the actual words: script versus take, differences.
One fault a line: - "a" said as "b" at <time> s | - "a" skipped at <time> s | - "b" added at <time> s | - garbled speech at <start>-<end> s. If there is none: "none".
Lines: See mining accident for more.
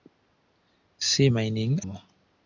- "accident for" skipped at 1.8 s